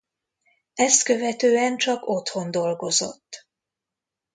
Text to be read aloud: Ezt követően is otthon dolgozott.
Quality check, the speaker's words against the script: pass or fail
fail